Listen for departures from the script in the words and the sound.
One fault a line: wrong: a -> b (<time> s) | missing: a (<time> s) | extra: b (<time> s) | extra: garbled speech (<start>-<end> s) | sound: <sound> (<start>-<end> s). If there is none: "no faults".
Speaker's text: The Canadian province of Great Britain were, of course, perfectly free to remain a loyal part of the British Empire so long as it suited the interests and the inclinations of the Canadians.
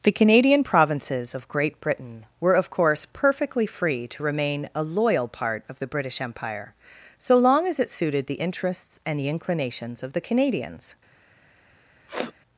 wrong: province -> provinces (0.6 s)
sound: sniff (12.1-12.3 s)